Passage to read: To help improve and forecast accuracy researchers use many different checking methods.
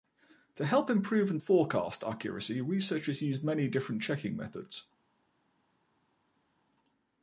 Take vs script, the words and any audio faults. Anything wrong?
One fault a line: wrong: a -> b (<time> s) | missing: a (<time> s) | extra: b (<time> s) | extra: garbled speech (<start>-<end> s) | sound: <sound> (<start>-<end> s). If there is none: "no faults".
no faults